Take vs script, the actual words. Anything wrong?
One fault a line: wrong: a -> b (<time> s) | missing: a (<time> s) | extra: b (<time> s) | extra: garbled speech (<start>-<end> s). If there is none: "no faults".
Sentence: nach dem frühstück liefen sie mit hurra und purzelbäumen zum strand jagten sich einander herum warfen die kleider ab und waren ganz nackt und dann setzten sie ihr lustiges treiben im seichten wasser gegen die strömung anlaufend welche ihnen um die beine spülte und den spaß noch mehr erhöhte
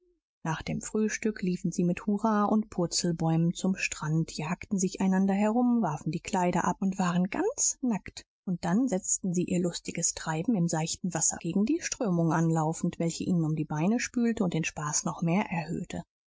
no faults